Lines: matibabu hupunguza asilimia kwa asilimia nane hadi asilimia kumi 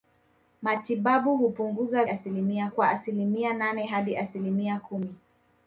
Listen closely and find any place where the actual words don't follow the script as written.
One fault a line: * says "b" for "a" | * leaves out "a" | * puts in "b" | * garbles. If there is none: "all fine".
all fine